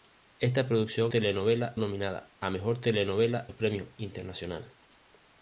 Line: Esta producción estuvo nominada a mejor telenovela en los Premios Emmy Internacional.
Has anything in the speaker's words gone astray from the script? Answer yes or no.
yes